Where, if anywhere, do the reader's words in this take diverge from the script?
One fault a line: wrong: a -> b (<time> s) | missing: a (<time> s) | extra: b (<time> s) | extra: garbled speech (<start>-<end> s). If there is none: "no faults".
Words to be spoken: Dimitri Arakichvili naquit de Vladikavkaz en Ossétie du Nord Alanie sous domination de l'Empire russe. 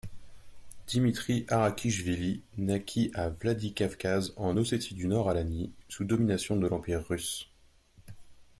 wrong: de -> à (3.1 s)